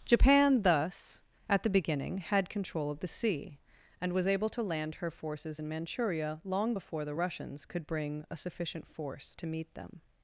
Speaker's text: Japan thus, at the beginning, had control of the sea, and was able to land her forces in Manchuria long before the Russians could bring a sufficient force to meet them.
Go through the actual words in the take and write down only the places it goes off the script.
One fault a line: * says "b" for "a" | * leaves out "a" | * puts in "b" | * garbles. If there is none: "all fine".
all fine